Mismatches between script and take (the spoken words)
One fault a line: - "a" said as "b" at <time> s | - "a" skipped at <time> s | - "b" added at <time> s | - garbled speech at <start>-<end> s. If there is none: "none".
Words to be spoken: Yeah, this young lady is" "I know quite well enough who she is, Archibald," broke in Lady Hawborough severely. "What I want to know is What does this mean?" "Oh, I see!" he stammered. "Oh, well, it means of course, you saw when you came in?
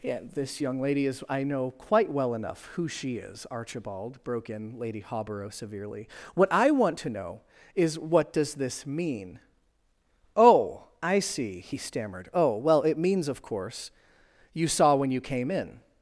none